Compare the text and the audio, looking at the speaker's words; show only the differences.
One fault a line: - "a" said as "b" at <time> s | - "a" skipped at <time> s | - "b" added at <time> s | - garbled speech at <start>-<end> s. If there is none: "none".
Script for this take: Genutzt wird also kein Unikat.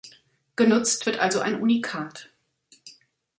- "kein" said as "ein" at 1.4 s